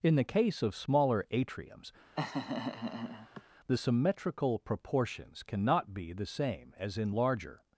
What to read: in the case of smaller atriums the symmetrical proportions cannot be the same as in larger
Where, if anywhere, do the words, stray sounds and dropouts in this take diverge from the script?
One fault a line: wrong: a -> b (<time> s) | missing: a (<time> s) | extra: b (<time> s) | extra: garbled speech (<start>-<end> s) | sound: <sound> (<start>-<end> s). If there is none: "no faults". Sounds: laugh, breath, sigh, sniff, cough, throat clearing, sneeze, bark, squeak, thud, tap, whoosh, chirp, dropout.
sound: laugh (2.2-3.4 s)